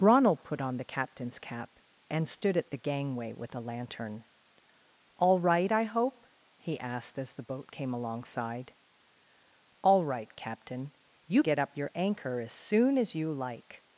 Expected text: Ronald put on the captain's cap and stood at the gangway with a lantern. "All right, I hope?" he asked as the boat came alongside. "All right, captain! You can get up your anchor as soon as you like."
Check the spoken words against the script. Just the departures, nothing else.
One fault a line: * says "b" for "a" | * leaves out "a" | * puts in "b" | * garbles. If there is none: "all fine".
* leaves out "can"